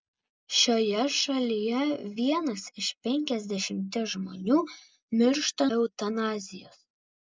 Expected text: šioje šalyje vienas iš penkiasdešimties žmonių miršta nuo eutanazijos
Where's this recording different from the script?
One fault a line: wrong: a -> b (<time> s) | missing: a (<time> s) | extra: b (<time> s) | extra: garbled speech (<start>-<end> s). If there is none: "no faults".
missing: nuo (5.7 s)